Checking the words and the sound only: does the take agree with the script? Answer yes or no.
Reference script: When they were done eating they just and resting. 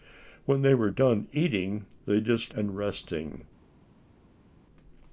yes